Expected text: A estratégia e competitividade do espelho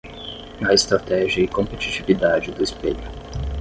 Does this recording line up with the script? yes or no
yes